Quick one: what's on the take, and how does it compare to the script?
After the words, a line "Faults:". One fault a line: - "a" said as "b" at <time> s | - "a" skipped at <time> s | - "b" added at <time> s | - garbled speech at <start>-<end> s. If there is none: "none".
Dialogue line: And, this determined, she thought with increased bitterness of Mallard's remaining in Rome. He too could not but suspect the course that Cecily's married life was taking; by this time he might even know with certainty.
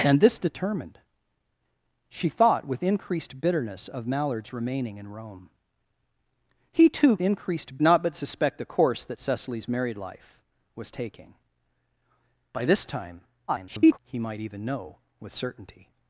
And, this determined, she thought with increased bitterness of Mallard's remaining in Rome. He too increased not but suspect the course that Cecily's married life was taking; by this time [garbled] he might even know with certainty.
Faults:
- "could" said as "increased" at 7.2 s
- garbled speech at 13.5-14.0 s